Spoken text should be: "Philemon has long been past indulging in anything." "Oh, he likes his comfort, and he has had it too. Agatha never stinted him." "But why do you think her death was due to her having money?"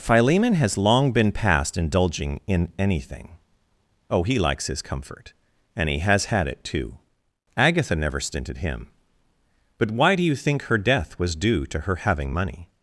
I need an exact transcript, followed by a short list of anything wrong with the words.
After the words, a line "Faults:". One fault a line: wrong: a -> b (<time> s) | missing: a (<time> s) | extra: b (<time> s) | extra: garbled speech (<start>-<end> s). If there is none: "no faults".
"Philemon has long been past indulging in anything." "Oh, he likes his comfort, and he has had it too. Agatha never stinted him." "But why do you think her death was due to her having money?"
Faults:
no faults